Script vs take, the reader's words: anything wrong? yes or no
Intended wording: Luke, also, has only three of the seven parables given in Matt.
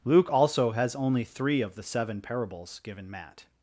yes